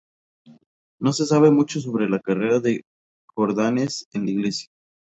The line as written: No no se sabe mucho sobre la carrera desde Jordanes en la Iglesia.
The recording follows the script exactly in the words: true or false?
false